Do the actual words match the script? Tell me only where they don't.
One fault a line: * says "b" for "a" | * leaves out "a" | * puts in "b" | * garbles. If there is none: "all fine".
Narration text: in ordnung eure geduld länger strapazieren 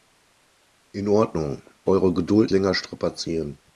all fine